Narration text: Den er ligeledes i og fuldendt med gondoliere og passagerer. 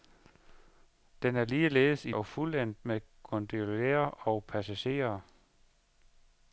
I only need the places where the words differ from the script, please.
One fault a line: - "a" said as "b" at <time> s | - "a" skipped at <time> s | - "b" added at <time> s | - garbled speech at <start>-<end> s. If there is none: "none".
none